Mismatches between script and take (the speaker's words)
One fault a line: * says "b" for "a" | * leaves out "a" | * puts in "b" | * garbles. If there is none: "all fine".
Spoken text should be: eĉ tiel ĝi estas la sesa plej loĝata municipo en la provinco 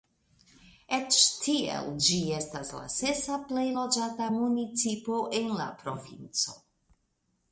all fine